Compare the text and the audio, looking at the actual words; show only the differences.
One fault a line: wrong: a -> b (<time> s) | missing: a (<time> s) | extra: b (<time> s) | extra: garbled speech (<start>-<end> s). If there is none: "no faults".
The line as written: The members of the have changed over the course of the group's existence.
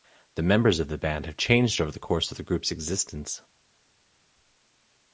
extra: band (1.0 s)